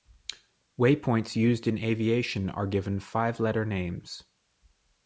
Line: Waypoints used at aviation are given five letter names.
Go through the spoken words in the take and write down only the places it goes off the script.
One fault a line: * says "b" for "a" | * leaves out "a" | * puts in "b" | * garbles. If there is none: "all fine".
* says "in" for "at"